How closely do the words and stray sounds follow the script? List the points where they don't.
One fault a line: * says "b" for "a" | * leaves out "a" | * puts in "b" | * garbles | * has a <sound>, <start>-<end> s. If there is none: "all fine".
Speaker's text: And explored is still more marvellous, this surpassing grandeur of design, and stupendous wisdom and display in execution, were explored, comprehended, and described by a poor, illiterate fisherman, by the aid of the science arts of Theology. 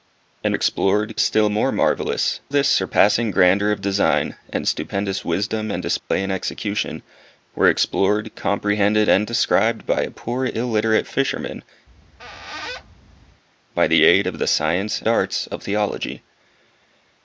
* has a dropout, 6.0-6.1 s
* has a squeak, 11.9-13.4 s